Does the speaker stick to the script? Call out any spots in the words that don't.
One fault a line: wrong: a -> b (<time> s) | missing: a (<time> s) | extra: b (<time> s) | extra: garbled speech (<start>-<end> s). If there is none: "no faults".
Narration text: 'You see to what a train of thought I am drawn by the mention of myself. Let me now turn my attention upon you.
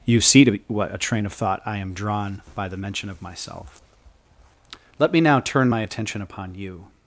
no faults